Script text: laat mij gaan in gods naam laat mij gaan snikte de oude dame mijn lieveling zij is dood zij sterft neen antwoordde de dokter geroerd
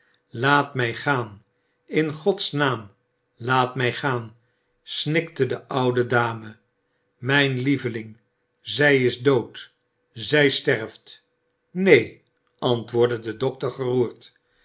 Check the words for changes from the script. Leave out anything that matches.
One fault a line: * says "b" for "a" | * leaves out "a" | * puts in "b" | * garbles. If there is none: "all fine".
all fine